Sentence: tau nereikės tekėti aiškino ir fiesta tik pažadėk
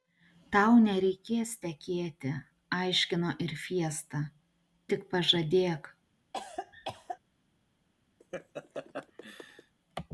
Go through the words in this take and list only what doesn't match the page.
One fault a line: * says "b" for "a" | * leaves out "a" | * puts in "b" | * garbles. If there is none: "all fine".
all fine